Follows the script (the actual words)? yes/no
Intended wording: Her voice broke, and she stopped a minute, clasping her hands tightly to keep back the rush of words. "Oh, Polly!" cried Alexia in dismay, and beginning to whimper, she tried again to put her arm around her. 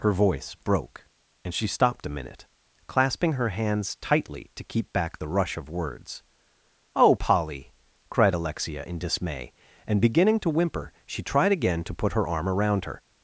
yes